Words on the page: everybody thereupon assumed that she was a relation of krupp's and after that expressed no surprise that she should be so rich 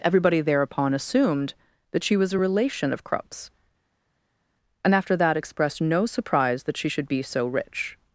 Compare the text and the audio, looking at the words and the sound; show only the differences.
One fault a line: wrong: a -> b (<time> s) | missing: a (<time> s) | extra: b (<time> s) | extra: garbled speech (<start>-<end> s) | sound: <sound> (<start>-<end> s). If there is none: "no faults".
no faults